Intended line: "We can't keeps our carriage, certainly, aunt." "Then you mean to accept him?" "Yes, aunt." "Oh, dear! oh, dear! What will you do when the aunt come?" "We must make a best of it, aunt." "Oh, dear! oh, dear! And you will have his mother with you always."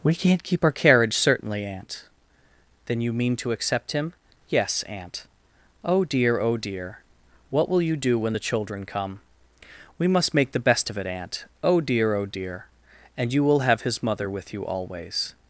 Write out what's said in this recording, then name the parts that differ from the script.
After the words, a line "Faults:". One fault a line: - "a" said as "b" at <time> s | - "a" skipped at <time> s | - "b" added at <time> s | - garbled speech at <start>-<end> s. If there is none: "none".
"We can't keep our carriage, certainly, aunt." "Then you mean to accept him?" "Yes, aunt." "Oh, dear! oh, dear! What will you do when the children come?" "We must make the best of it, aunt." "Oh, dear! oh, dear! And you will have his mother with you always."
Faults:
- "keeps" said as "keep" at 0.4 s
- "aunt" said as "children" at 8.5 s
- "a" said as "the" at 10.5 s